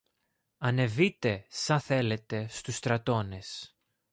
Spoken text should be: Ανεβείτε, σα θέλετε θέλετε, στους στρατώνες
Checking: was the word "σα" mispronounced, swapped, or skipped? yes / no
no